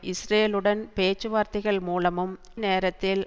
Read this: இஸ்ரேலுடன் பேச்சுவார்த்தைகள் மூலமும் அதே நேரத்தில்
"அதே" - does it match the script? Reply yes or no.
no